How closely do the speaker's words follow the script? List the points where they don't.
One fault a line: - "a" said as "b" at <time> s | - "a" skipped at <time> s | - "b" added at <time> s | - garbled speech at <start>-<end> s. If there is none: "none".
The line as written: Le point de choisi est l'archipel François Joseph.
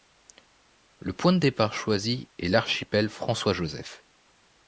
- "départ" added at 1.4 s